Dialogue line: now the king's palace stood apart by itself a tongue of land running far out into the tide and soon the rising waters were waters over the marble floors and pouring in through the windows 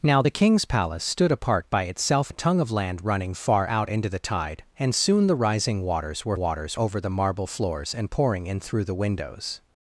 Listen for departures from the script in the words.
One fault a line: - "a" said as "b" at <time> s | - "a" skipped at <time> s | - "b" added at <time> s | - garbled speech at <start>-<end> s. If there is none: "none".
none